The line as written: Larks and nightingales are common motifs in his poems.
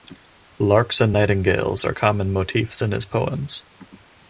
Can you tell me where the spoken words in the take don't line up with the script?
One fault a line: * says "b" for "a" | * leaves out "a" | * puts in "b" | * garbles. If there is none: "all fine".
all fine